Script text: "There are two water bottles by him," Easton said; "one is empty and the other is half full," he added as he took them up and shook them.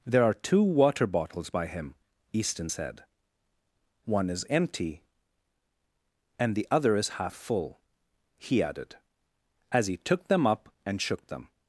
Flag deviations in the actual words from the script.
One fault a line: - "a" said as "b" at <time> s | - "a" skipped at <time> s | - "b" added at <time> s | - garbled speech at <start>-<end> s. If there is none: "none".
none